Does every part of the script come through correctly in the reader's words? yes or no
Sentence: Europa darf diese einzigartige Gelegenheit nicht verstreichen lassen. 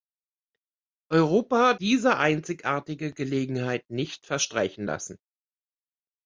no